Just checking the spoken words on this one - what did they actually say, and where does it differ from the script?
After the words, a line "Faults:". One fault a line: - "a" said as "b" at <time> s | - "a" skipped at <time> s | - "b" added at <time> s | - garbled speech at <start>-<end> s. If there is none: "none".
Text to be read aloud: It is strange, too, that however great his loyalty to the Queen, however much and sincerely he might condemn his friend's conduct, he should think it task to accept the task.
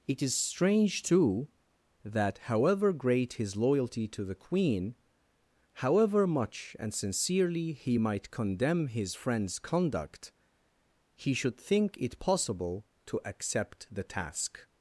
It is strange, too, that however great his loyalty to the Queen, however much and sincerely he might condemn his friend's conduct, he should think it possible to accept the task.
Faults:
- "task" said as "possible" at 12.2 s